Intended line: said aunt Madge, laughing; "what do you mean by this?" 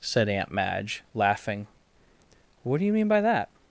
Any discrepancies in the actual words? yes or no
yes